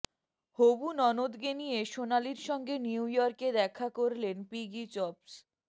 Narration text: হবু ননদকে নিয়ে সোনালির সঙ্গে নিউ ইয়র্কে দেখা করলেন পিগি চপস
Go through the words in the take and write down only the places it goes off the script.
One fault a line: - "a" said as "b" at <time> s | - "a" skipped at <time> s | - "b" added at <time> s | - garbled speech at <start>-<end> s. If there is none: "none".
none